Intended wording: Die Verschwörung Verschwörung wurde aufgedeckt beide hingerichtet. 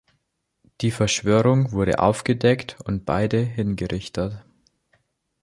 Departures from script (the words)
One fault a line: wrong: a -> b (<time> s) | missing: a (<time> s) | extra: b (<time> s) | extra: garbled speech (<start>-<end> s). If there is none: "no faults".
missing: Verschwörung (1.7 s)
extra: und (2.9 s)